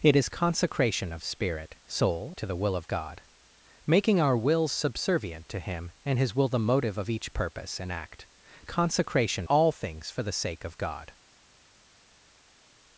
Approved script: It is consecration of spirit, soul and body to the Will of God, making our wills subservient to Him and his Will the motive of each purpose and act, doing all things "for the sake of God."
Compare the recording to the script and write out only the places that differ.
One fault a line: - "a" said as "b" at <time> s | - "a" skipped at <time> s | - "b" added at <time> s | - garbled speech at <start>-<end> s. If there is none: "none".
- "and body" skipped at 2.3 s
- "doing" said as "consecration" at 8.6 s